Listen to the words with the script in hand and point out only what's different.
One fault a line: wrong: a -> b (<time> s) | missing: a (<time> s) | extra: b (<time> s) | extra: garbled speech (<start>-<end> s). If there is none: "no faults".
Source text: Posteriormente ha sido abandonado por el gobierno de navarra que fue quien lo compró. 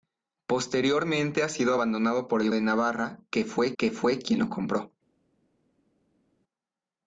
missing: gobierno (2.5 s)
extra: que fue (3.8 s)